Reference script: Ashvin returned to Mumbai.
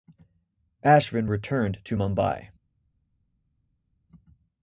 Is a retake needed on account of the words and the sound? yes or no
no